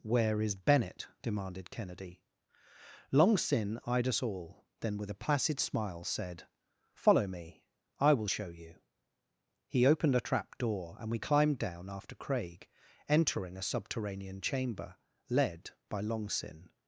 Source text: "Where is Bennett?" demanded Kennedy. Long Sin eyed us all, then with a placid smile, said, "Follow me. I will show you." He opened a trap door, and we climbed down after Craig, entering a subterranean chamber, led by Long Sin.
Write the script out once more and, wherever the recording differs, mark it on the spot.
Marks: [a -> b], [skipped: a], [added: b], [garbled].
"Where is Bennett?" demanded Kennedy. Long Sin eyed us all, then with a placid smile, said, "Follow me. I will show you." He opened a trap door, and we climbed down after Craig, entering a subterranean chamber, led by Long Sin.